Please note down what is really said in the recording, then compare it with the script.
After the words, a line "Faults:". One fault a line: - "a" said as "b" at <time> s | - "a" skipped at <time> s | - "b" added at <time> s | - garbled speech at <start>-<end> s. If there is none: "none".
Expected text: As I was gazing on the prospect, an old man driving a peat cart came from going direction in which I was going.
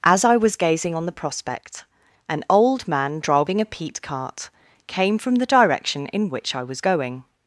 As I was gazing on the prospect, an old man driving a peat cart came from the direction in which I was going.
Faults:
- "going" said as "the" at 5.3 s